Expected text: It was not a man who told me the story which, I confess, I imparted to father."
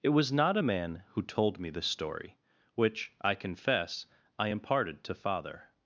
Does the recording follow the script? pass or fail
pass